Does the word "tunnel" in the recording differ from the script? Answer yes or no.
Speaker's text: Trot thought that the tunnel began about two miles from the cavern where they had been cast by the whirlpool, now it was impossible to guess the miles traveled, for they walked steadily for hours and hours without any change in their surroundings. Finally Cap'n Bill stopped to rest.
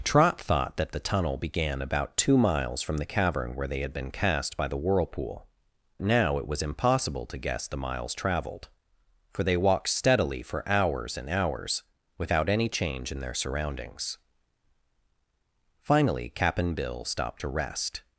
no